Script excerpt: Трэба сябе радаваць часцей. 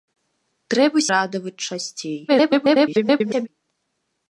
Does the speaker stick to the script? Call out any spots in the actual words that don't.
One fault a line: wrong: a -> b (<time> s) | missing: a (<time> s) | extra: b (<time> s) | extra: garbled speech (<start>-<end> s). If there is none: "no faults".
missing: сябе (1.0 s)
extra: garbled speech (2.3-3.5 s)